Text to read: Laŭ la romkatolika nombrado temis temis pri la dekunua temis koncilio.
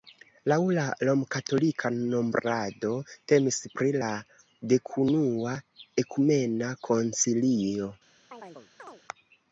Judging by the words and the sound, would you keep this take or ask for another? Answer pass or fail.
fail